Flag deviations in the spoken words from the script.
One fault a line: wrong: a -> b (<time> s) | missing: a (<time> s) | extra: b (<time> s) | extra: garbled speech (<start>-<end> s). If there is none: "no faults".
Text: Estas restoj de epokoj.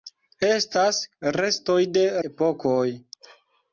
no faults